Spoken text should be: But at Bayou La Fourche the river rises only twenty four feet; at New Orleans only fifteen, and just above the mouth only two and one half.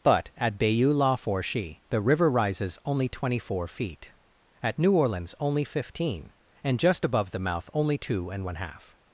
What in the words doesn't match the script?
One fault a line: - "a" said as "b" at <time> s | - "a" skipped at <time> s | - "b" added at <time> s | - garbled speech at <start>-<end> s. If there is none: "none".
none